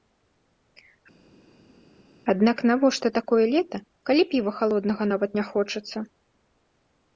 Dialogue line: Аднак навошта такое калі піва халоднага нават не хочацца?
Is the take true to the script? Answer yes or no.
no